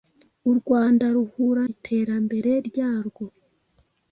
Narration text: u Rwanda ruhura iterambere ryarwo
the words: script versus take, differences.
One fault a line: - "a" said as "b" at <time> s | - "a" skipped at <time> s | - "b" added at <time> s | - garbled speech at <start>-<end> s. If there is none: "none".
none